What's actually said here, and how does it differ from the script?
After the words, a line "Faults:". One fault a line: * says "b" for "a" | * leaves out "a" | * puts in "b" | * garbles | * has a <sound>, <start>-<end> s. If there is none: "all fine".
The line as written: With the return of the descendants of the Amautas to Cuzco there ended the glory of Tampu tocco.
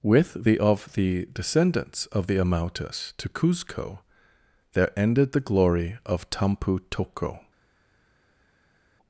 With the of the descendants of the Amautas to Cuzco there ended the glory of Tampu tocco.
Faults:
* leaves out "return"